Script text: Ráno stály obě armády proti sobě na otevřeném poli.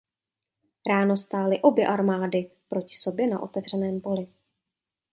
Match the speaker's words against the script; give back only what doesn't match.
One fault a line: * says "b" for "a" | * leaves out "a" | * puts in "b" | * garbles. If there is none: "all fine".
all fine